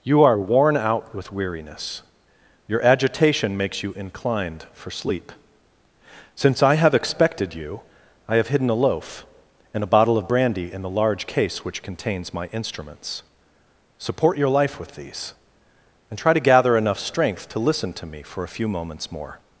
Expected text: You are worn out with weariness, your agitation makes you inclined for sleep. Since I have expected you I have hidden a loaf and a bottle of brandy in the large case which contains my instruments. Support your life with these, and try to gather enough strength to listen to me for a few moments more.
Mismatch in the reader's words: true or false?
false